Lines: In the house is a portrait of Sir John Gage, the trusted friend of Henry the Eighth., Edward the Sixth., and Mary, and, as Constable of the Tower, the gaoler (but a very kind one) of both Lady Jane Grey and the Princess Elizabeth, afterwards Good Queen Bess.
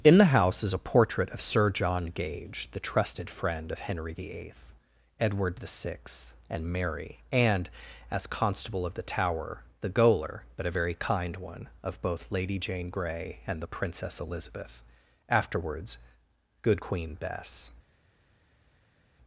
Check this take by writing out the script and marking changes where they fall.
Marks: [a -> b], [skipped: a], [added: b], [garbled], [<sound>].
In the house is a portrait of Sir John Gage, the trusted friend of Henry the Eighth., Edward the Sixth., and Mary, and, as Constable of the Tower, the gaoler (but a very kind one) of both Lady Jane Grey and the Princess Elizabeth, afterwards Good Queen Bess.